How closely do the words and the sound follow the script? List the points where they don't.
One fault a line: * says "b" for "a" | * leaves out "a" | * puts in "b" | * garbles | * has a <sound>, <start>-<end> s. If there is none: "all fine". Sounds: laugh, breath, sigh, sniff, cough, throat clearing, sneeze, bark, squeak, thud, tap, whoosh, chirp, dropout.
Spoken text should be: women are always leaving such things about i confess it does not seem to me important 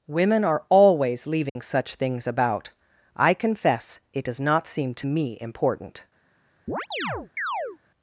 * has a dropout, 1.5-1.6 s
* has a chirp, 6.7-7.8 s